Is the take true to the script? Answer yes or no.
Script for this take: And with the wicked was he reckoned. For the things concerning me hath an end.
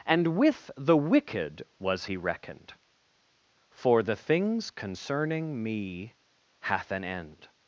yes